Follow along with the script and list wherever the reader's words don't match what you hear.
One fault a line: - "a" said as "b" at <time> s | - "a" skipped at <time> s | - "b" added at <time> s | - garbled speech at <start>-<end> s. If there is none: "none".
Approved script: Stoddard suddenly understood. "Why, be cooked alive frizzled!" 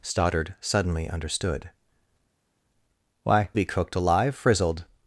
none